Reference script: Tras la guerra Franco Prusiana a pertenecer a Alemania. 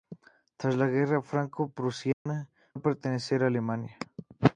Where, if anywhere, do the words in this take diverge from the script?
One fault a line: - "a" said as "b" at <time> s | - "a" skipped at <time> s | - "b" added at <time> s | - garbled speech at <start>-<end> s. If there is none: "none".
none